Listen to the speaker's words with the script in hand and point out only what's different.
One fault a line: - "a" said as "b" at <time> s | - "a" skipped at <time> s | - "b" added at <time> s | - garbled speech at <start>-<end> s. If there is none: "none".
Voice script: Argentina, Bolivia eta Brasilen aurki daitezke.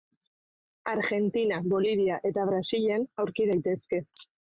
none